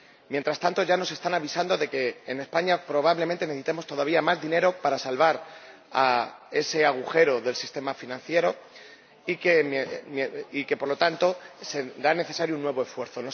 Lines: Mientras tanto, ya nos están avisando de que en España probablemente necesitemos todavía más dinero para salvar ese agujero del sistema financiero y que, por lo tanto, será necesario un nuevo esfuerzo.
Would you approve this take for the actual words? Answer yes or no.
yes